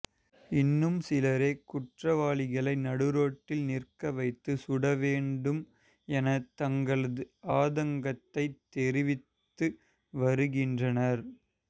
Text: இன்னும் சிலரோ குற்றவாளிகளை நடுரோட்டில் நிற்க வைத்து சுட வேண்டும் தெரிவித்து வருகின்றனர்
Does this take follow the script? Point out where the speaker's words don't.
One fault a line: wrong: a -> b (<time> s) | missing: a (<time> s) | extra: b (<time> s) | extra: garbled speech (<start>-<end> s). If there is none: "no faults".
extra: என தங்களது ஆதங்கத்தை (6.1 s)